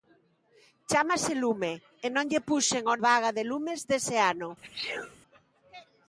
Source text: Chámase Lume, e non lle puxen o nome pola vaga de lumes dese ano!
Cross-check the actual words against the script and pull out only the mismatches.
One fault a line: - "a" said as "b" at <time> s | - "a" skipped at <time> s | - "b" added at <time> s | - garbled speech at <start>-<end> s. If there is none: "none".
- "nome pola" skipped at 3.0 s